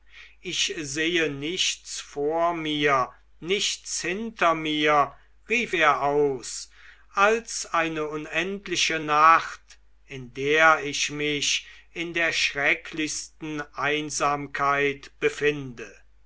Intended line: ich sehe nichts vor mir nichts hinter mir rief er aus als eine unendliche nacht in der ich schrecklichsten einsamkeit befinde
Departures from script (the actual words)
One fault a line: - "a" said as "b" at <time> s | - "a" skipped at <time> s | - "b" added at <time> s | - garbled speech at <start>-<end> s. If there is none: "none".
- "mich in der" added at 11.1 s